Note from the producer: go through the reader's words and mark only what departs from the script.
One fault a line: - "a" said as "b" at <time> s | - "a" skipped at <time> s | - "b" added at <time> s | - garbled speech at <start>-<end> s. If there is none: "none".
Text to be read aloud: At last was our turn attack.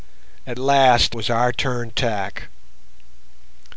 none